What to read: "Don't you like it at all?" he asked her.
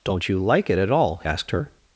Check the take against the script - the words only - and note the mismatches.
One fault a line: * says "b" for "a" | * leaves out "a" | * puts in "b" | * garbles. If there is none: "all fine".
* leaves out "he"